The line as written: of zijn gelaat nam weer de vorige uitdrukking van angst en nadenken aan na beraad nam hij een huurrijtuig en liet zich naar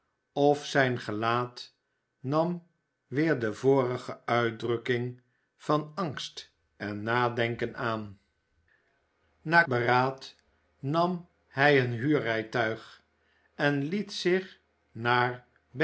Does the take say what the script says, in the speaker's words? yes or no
yes